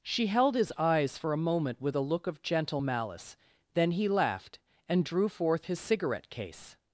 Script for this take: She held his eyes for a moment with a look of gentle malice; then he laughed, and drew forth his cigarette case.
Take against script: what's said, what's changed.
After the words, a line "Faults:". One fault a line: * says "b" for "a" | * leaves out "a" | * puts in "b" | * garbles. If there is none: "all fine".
She held his eyes for a moment with a look of gentle malice; then he laughed, and drew forth his cigarette case.
Faults:
all fine